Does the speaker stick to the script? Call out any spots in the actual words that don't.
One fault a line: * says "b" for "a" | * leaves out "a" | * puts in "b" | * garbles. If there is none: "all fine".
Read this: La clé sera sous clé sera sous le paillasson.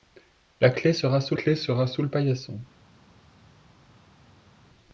all fine